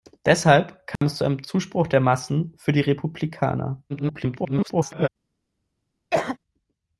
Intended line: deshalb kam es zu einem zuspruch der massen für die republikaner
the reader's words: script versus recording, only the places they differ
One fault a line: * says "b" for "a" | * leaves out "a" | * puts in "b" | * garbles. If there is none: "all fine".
* garbles